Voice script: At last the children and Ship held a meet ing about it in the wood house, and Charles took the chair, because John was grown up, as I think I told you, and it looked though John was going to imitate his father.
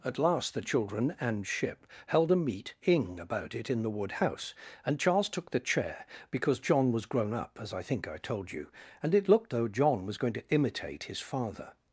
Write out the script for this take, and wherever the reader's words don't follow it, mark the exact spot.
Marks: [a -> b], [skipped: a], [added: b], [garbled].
At last the children and Ship held a meet ing about it in the wood house, and Charles took the chair, because John was grown up, as I think I told you, and it looked though John was going to imitate his father.